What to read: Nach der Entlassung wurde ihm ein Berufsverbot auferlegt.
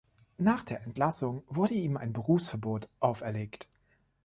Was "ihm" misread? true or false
false